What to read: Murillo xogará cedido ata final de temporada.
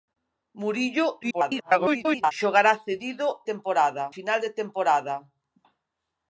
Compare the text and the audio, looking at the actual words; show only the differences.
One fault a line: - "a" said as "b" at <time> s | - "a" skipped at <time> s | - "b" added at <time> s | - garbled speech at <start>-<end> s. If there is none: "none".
- garbled speech at 1.2-2.3 s
- "ata" said as "temporada" at 3.5 s